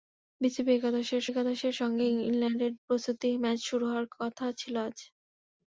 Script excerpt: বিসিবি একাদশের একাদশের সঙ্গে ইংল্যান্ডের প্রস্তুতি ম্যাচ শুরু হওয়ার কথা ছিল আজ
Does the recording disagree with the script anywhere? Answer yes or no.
no